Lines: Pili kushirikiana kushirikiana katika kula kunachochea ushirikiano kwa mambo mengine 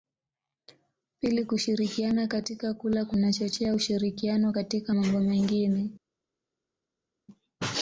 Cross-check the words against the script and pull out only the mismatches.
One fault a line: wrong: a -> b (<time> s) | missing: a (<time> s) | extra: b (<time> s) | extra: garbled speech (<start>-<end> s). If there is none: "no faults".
missing: kushirikiana (2.3 s)
wrong: kwa -> katika (4.5 s)